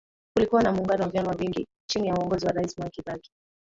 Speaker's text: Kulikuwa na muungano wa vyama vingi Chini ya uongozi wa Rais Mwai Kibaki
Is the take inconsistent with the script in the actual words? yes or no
no